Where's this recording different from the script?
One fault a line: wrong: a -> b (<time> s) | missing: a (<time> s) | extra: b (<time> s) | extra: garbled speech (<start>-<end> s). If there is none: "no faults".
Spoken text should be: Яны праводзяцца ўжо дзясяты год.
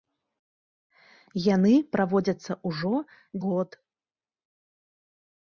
missing: дзясяты (2.9 s)